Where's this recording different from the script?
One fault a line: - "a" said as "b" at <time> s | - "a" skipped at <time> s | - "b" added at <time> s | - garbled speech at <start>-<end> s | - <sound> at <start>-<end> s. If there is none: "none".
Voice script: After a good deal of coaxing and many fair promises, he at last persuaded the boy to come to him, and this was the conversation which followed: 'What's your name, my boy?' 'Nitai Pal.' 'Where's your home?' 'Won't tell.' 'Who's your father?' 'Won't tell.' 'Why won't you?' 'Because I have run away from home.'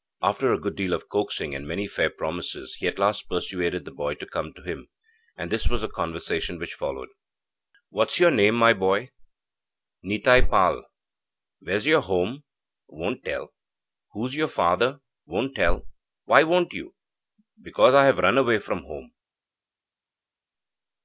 none